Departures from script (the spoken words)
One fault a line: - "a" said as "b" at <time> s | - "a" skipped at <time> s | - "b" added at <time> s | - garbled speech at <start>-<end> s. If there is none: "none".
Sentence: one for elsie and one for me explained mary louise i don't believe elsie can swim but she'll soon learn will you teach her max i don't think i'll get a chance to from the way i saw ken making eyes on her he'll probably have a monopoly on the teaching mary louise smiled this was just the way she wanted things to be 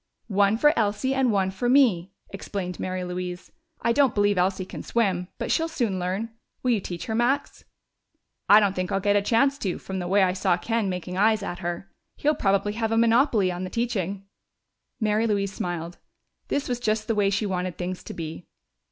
- "on" said as "at" at 11.4 s